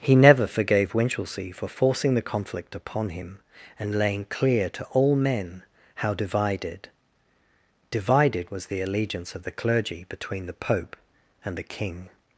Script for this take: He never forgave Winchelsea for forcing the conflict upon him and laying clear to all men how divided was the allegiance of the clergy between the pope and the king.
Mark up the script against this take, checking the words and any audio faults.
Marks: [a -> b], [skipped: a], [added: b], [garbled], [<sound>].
He never forgave Winchelsea for forcing the conflict upon him and laying clear to all men how divided [added: divided] was the allegiance of the clergy between the pope and the king.